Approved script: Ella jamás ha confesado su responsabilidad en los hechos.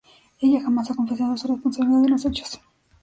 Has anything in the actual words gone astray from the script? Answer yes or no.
no